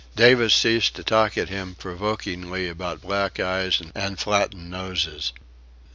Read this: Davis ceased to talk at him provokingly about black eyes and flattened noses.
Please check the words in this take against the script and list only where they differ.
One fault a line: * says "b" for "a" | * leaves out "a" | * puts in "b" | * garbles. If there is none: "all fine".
all fine